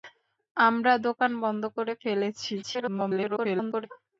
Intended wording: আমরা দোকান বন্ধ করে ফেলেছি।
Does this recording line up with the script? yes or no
no